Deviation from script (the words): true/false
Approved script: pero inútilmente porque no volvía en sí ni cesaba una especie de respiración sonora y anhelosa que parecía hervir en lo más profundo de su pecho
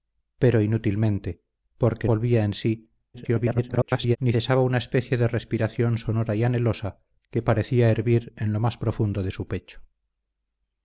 true